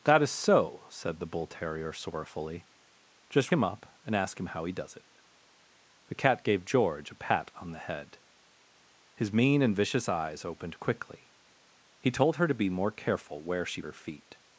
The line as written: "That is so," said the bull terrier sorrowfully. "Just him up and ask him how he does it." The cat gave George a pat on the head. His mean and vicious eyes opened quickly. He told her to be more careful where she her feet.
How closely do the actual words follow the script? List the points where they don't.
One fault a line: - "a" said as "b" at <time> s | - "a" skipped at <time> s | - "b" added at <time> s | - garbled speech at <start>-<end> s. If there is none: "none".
none